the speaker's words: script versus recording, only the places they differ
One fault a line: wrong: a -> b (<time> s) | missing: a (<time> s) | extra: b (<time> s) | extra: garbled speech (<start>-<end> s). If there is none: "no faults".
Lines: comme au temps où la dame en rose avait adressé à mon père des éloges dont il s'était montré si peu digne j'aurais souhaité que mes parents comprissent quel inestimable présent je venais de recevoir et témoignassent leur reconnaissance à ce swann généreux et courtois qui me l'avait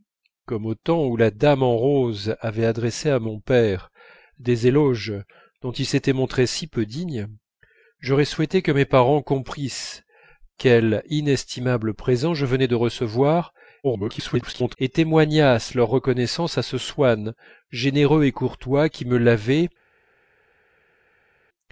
extra: garbled speech (13.8-14.8 s)